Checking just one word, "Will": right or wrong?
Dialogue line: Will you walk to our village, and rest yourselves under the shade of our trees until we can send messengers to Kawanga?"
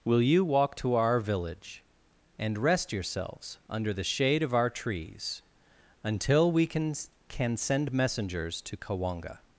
right